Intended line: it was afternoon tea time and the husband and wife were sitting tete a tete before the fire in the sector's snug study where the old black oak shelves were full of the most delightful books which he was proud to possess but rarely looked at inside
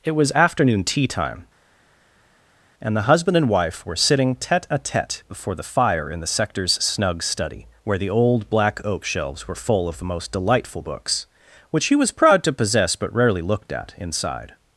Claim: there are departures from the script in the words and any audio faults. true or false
false